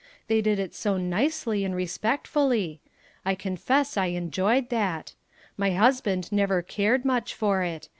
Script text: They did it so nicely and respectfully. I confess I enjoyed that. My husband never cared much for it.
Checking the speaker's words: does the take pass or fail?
pass